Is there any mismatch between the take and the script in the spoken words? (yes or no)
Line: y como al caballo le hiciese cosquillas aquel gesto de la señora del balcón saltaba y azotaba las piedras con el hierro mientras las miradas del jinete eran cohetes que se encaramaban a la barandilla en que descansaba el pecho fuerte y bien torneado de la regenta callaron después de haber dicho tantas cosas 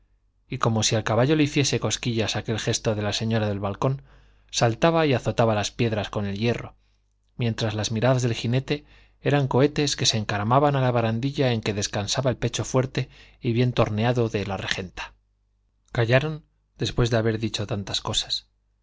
yes